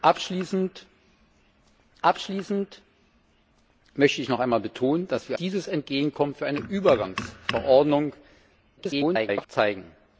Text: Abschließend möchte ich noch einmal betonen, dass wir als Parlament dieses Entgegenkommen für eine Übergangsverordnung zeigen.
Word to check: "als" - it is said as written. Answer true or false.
false